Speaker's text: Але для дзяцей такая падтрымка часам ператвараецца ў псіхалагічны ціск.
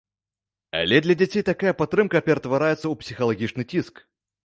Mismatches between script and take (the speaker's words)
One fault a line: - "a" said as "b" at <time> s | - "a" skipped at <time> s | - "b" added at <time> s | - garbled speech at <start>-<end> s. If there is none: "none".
- "часам" skipped at 2.2 s